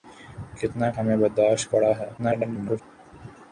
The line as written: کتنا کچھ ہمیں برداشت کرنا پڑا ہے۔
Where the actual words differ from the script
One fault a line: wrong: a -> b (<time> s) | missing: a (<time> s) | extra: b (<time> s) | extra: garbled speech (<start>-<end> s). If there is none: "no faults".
missing: کچھ (0.9 s)
missing: کرنا (1.7 s)
extra: garbled speech (2.2-2.8 s)